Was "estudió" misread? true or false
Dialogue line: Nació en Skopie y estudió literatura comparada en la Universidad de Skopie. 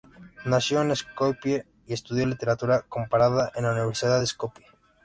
false